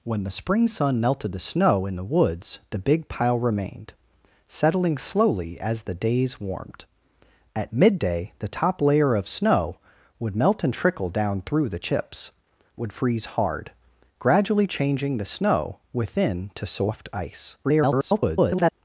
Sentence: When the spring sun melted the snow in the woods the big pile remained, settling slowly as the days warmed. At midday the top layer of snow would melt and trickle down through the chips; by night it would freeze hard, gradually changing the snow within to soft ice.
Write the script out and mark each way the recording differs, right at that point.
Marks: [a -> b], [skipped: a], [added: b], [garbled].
When the spring sun melted the snow in the woods the big pile remained, settling slowly as the days warmed. At midday the top layer of snow would melt and trickle down through the chips; [skipped: by night it] would freeze hard, gradually changing the snow within to soft ice. [garbled]